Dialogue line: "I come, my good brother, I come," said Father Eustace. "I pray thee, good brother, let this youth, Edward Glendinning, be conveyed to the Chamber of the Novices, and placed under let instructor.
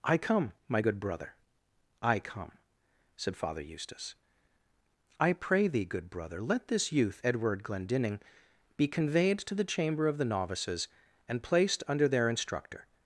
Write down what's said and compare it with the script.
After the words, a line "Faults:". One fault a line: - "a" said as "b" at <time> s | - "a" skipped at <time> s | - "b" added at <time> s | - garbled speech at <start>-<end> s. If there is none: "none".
"I come, my good brother, I come," said Father Eustace. "I pray thee, good brother, let this youth, Edward Glendinning, be conveyed to the Chamber of the Novices, and placed under their instructor.
Faults:
- "let" said as "their" at 12.1 s